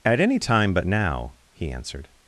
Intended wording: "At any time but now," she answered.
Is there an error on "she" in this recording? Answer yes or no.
yes